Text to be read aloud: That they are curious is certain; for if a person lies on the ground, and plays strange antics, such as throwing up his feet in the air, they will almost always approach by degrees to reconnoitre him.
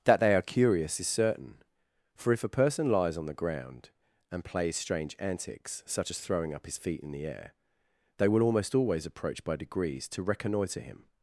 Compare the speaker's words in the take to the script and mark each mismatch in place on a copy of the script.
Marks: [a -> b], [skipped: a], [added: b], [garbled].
That they are curious is certain; for if a person lies on the ground, and plays strange antics, such as throwing up his feet in the air, they will almost always approach by degrees to reconnoitre him.